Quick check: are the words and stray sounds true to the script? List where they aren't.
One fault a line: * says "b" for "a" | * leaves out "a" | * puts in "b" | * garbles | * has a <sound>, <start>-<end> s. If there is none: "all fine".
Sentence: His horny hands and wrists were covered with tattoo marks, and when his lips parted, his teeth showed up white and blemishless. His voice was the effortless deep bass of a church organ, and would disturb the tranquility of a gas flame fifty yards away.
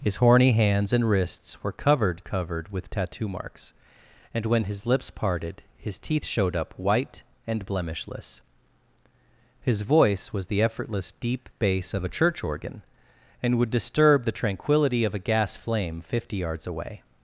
* puts in "covered"